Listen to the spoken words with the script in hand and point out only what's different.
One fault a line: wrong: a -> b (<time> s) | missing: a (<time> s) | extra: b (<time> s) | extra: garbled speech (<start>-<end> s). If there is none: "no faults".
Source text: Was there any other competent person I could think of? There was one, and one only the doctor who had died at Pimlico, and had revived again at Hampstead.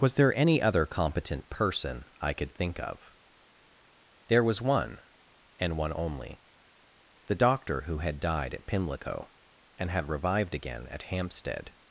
no faults